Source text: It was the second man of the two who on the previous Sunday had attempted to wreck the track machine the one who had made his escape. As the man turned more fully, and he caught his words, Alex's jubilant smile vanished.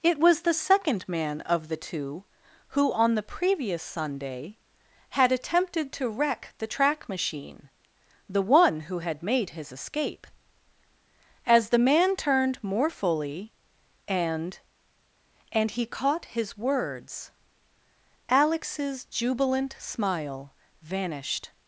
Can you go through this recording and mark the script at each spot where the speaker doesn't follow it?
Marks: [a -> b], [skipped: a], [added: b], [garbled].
It was the second man of the two who on the previous Sunday had attempted to wreck the track machine the one who had made his escape. As the man turned more fully, and [added: and] he caught his words, Alex's jubilant smile vanished.